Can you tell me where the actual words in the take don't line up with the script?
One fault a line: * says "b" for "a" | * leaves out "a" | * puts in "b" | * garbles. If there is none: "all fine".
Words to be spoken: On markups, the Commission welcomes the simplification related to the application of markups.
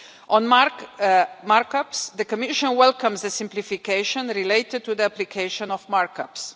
all fine